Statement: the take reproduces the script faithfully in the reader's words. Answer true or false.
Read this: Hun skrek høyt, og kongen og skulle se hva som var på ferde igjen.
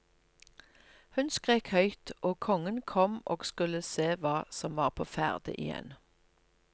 false